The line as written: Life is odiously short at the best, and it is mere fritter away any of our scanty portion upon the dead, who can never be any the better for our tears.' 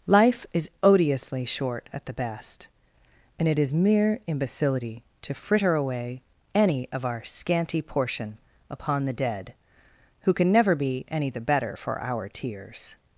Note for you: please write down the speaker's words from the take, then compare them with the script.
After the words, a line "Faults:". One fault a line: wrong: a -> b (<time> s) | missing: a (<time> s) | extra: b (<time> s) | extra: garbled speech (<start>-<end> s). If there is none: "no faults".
Life is odiously short at the best, and it is mere imbecility to fritter away any of our scanty portion upon the dead, who can never be any the better for our tears.'
Faults:
extra: imbecility to (4.2 s)